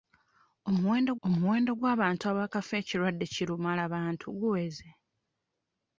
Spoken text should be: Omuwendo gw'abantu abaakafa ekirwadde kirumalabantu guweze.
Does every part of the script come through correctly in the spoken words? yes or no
no